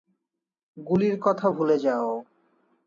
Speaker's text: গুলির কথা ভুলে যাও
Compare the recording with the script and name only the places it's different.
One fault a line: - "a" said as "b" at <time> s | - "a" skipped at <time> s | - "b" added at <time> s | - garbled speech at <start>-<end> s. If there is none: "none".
none